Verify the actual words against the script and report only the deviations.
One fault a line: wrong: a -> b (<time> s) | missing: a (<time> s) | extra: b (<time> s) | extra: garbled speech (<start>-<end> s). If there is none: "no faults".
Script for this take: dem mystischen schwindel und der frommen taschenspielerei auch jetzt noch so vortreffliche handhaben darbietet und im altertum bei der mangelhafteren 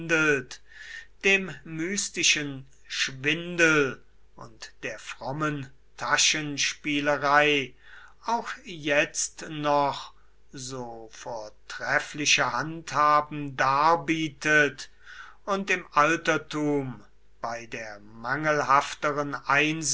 no faults